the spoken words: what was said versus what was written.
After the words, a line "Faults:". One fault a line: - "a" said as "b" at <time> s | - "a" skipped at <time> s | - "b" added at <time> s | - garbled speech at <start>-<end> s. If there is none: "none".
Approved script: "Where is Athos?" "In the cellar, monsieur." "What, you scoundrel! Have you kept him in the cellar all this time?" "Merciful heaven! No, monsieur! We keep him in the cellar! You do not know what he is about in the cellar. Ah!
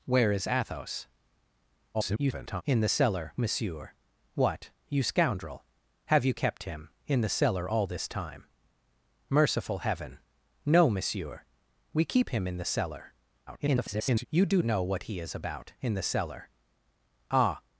"Where is Athos?" [garbled] "In the cellar, monsieur." "What, you scoundrel! Have you kept him in the cellar all this time?" "Merciful heaven! No, monsieur! We keep him in the cellar! [garbled] You do know what he is about in the cellar. Ah!
Faults:
- garbled speech at 1.9-2.6 s
- garbled speech at 13.5-14.3 s
- "not" skipped at 14.6 s